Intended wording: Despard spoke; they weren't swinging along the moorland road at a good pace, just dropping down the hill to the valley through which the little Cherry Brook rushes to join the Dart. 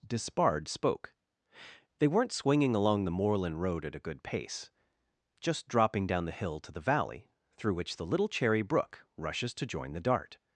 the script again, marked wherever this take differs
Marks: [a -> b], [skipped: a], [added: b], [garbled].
Despard spoke; they weren't swinging along the moorland road at a good pace, just dropping down the hill to the valley through which the little Cherry Brook rushes to join the Dart.